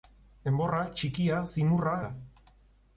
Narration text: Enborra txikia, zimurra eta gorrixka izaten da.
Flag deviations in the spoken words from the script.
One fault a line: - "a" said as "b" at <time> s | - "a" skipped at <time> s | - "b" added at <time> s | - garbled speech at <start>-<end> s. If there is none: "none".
- "eta gorrixka izaten" skipped at 2.0 s